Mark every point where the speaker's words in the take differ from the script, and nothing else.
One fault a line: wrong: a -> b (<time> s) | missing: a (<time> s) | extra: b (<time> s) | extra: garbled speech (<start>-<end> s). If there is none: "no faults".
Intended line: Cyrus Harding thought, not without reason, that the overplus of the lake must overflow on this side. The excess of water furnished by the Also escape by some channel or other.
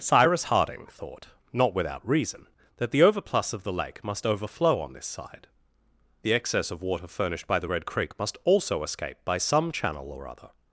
extra: Red Creek must (7.7 s)